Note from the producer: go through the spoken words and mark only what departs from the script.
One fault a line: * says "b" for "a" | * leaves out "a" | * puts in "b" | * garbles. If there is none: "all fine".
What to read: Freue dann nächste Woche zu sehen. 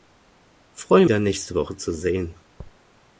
all fine